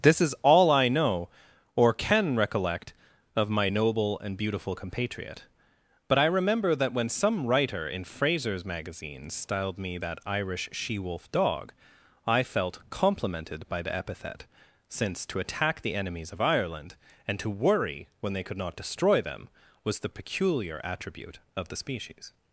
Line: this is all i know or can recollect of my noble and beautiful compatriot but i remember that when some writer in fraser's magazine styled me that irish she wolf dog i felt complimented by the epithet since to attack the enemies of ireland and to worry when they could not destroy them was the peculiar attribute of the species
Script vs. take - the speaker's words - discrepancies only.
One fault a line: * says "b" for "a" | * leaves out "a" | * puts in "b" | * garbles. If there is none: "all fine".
all fine